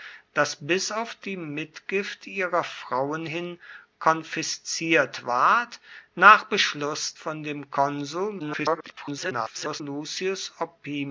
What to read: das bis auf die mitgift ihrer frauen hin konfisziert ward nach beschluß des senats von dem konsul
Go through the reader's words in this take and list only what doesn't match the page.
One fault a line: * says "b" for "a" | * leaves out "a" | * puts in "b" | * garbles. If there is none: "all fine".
* leaves out "des senats"
* garbles